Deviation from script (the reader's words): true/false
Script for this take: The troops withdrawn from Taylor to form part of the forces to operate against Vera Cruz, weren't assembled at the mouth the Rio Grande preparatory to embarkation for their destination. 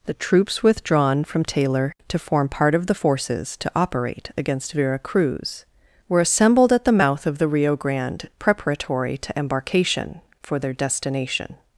true